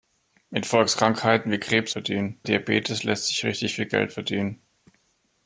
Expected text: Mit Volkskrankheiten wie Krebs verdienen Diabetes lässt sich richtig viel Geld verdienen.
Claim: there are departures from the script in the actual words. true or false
false